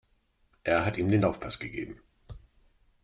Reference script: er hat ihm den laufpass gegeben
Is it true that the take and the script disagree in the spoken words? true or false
false